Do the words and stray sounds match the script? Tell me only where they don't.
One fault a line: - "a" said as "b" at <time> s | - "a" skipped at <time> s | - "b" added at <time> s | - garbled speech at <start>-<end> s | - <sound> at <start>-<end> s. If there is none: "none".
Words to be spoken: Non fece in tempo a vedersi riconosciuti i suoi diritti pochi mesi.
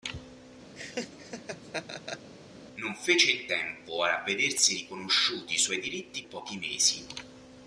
- laugh at 0.8-2.3 s